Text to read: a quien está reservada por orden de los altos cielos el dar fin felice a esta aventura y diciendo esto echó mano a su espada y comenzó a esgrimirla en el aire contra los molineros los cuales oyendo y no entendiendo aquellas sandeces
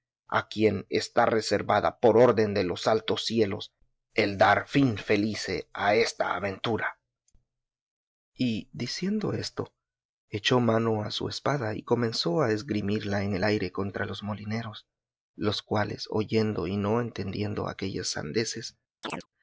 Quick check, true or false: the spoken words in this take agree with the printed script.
true